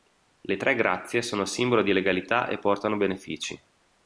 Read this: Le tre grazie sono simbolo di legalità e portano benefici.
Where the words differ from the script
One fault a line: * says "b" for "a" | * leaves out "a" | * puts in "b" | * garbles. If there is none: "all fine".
all fine